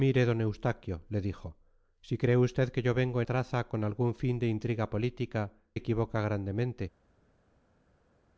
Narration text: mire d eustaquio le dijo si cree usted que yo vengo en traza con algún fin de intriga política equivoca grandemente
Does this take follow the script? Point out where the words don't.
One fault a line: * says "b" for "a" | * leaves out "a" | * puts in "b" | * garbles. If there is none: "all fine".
all fine